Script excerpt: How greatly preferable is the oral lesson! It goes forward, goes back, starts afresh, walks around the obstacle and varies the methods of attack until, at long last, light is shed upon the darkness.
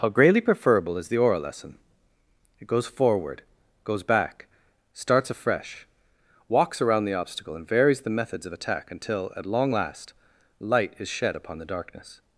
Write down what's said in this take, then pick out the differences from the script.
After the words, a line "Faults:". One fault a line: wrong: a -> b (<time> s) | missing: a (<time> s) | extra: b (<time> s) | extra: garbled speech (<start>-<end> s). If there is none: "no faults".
How greatly preferable is the oral lesson! It goes forward, goes back, starts afresh, walks around the obstacle and varies the methods of attack until, at long last, light is shed upon the darkness.
Faults:
no faults